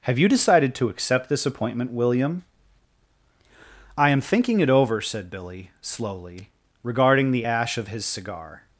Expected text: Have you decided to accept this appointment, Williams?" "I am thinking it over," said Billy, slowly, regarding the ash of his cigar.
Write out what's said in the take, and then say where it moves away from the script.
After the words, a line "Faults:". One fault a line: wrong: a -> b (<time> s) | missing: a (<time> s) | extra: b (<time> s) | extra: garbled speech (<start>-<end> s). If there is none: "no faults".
Have you decided to accept this appointment, William?" "I am thinking it over," said Billy, slowly, regarding the ash of his cigar.
Faults:
wrong: Williams -> William (1.9 s)